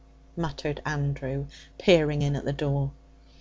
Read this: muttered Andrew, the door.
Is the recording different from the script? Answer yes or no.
yes